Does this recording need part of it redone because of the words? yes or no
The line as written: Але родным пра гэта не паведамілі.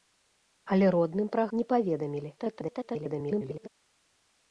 yes